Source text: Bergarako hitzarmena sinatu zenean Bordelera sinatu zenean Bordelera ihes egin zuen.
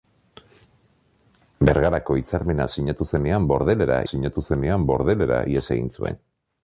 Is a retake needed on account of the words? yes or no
no